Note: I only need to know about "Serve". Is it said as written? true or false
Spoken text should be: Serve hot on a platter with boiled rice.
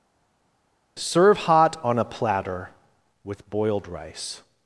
true